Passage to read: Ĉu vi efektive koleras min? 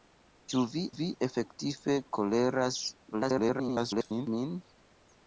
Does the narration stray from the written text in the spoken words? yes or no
yes